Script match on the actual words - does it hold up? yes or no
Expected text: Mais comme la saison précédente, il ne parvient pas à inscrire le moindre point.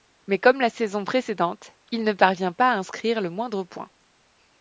yes